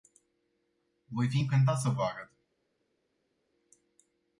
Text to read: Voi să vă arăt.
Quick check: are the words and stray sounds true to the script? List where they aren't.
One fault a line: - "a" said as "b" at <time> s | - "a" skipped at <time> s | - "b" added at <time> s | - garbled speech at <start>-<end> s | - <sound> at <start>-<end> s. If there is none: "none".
- "fi încântat" added at 1.3 s